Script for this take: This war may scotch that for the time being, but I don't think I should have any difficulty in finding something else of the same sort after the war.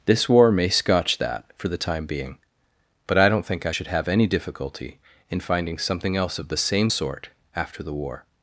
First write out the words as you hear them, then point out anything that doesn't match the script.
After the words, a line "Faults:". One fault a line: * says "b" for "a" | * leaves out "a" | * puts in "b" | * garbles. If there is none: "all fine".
This war may scotch that for the time being, but I don't think I should have any difficulty in finding something else of the same sort after the war.
Faults:
all fine